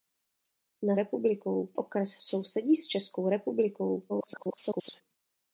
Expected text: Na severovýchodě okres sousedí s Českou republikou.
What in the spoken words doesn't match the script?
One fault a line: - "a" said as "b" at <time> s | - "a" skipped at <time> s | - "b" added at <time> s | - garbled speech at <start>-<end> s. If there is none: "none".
- "severovýchodě" said as "republikou" at 1.0 s
- garbled speech at 4.1-5.0 s